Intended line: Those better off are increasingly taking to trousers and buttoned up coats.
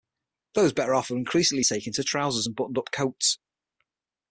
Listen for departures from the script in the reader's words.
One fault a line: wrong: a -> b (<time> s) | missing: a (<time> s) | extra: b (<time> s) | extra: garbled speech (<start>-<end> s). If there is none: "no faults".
no faults